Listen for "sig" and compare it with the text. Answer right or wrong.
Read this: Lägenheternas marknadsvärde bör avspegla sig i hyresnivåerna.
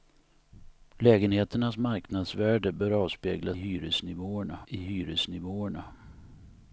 wrong